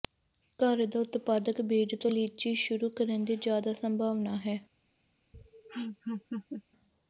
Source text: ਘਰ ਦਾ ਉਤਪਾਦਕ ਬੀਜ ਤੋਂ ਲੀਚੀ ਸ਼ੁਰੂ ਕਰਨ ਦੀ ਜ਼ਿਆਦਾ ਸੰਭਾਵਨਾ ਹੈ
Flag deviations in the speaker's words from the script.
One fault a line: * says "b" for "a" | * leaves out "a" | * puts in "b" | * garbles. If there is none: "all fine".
all fine